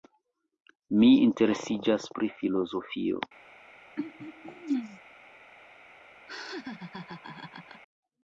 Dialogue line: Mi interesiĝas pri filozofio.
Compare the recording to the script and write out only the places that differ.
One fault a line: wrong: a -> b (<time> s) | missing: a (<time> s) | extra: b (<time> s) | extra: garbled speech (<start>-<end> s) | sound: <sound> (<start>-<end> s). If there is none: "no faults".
sound: throat clearing (4.0-5.0 s)
sound: laugh (6.3-7.8 s)